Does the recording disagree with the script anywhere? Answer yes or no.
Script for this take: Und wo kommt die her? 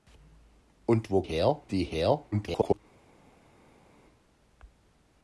yes